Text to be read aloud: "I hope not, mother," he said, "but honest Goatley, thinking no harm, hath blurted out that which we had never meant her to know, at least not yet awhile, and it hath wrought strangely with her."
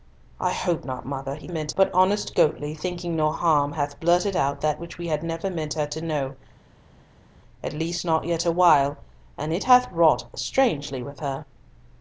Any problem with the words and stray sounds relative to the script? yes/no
yes